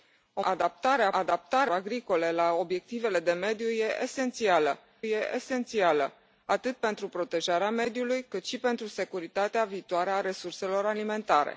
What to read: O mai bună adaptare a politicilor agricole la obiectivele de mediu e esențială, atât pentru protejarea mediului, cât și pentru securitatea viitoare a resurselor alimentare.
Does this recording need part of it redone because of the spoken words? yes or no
yes